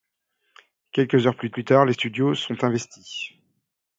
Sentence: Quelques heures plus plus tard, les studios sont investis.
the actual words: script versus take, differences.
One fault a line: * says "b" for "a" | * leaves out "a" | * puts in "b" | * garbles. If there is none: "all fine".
all fine